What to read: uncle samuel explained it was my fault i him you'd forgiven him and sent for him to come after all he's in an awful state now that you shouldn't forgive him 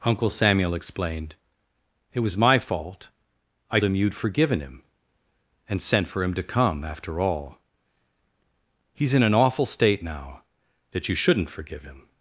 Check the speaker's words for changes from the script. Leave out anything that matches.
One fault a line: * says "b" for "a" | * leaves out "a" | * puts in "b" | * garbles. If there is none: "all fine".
all fine